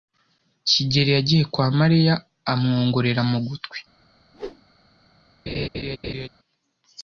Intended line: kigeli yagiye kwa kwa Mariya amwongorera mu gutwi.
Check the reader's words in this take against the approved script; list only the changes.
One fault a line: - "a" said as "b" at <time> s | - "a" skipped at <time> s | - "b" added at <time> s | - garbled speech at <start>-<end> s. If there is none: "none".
- "kwa" skipped at 1.7 s